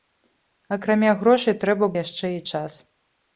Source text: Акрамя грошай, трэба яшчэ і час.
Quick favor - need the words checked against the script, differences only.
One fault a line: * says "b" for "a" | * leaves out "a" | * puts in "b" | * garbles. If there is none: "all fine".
all fine